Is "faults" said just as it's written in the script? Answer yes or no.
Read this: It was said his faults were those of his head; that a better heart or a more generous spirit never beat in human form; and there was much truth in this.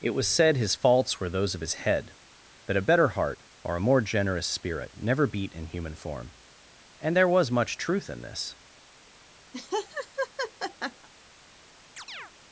yes